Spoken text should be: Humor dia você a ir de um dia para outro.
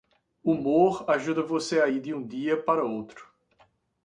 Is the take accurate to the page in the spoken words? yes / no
no